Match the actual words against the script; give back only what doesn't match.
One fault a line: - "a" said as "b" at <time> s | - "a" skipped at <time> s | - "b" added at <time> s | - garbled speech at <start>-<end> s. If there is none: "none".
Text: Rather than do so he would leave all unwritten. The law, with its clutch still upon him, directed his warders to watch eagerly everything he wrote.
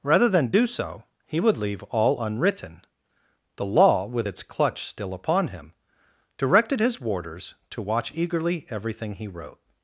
none